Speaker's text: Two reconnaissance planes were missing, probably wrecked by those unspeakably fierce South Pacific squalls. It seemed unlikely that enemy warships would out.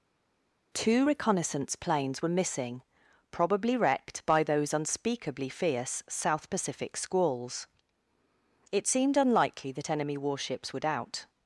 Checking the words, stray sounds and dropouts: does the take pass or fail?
pass